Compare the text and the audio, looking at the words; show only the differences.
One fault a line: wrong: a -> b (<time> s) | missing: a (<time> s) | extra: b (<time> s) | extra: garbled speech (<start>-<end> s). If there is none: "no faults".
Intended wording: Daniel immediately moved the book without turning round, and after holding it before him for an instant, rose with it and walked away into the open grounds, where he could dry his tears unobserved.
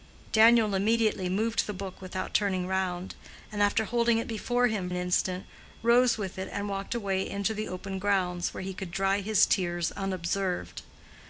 missing: for (4.9 s)